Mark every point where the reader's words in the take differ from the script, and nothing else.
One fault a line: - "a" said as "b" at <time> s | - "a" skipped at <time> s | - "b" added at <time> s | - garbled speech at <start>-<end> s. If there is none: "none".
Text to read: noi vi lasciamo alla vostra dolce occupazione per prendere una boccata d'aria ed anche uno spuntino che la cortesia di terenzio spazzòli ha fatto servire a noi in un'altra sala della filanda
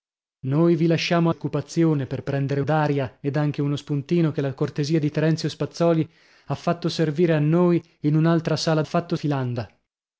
- "alla vostra dolce" skipped at 1.3 s
- "una boccata" skipped at 2.6 s
- "della" said as "fatto" at 8.8 s